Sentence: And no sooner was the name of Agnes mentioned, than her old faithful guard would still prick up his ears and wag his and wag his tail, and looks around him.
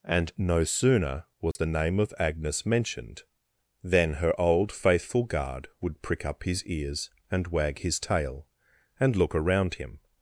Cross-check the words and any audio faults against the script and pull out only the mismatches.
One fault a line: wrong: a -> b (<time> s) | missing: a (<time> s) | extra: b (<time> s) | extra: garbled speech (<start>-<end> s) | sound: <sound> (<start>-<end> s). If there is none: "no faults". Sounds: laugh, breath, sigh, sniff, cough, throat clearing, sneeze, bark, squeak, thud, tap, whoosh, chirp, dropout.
sound: dropout (1.5-1.6 s)
missing: still (6.0 s)
missing: and wag his (8.0 s)
wrong: looks -> look (9.1 s)